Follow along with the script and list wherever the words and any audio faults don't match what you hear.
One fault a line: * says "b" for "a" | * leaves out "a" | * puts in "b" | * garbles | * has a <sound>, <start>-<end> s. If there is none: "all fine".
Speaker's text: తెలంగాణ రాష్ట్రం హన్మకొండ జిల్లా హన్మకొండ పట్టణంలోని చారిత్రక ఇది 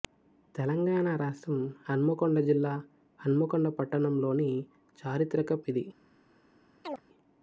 * has a chirp, 6.8-7.0 s